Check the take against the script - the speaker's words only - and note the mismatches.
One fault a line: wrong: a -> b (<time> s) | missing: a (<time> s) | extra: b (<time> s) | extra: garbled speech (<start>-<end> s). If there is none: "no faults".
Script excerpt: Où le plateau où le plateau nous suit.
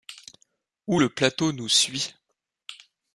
missing: où le plateau (1.5 s)